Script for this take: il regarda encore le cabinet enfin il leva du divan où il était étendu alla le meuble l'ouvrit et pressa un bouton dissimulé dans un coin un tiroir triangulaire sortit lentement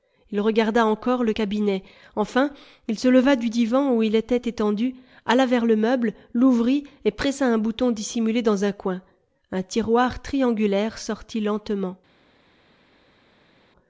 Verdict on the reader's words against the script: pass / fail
fail